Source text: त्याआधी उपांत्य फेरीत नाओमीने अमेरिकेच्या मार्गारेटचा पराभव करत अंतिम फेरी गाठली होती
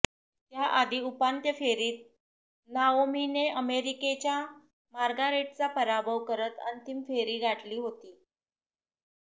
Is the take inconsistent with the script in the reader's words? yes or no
no